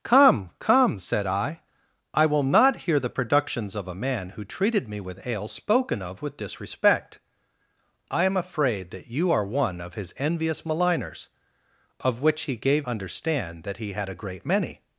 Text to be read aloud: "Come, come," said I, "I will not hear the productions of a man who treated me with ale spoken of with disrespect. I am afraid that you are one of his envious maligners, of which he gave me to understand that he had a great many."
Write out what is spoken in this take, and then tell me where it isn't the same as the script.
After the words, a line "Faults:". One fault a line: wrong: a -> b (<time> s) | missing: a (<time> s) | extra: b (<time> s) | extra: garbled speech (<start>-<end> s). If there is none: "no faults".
"Come, come," said I, "I will not hear the productions of a man who treated me with ale spoken of with disrespect. I am afraid that you are one of his envious maligners, of which he gave understand that he had a great many."
Faults:
missing: me to (12.9 s)